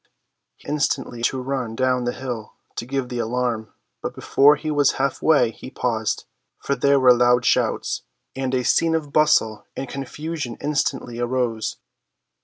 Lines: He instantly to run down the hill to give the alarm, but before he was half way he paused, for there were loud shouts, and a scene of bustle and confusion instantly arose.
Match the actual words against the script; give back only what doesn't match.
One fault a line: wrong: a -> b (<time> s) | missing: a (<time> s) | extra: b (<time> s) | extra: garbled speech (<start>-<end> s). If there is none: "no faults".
no faults